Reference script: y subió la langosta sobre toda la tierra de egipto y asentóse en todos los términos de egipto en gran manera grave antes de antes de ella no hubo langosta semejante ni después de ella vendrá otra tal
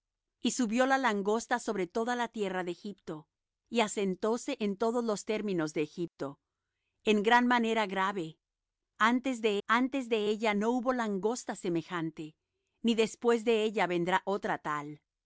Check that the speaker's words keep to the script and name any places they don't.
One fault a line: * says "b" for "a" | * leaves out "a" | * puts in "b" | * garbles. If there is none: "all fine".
all fine